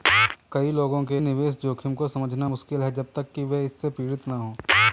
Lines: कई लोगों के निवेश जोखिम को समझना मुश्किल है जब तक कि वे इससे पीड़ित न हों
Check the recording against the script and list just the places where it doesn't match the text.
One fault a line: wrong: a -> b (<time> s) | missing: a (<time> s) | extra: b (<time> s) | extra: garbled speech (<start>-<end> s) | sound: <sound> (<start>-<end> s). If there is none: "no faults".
no faults